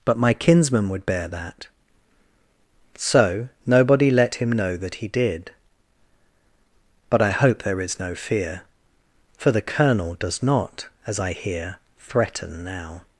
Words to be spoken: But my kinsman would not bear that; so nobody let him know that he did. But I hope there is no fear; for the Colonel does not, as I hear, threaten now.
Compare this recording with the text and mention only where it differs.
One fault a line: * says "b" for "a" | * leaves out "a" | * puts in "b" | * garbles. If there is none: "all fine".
* leaves out "not"